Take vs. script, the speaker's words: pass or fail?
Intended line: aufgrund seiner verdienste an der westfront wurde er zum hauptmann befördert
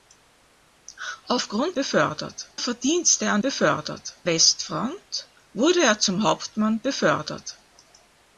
fail